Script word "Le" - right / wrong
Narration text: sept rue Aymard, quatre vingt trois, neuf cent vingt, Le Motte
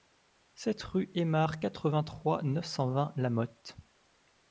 wrong